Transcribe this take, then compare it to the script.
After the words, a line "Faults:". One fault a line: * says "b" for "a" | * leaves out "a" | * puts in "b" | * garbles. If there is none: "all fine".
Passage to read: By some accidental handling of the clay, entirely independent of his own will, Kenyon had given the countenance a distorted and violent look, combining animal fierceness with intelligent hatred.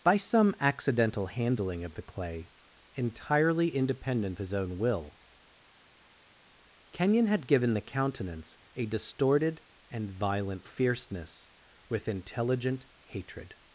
By some accidental handling of the clay, entirely independent his own will, Kenyon had given the countenance a distorted and violent fierceness with intelligent hatred.
Faults:
* leaves out "of"
* leaves out "look combining animal"